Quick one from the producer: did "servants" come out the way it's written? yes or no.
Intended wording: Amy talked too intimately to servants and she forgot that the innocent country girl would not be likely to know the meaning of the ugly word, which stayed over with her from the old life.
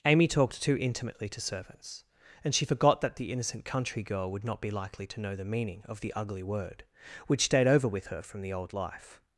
yes